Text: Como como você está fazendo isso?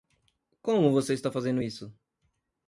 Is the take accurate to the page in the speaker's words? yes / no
no